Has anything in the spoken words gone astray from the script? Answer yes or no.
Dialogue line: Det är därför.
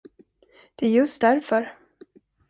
yes